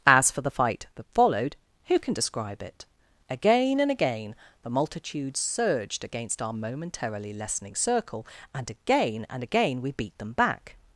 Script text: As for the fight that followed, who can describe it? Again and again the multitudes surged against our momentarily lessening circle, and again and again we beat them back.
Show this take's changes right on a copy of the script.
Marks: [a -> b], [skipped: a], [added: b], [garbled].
As for the fight that followed, who can describe it? Again and again the multitudes surged against our momentarily lessening circle, and again and again we beat them back.